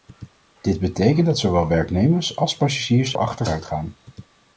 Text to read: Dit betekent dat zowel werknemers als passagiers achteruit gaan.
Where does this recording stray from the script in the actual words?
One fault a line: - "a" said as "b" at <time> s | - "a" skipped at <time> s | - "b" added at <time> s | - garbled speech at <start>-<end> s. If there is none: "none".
none